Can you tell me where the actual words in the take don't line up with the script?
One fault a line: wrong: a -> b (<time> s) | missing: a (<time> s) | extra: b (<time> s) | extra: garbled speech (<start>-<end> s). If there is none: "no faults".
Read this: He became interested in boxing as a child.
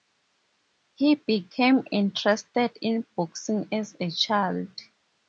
no faults